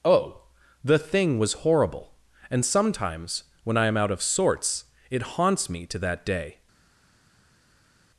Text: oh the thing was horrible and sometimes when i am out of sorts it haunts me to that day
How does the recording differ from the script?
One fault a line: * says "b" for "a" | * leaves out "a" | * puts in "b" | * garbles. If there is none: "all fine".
all fine